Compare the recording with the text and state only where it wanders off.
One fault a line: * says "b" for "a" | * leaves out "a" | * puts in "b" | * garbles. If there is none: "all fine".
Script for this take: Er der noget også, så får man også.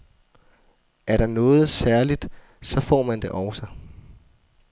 * says "særligt" for "også"
* puts in "det"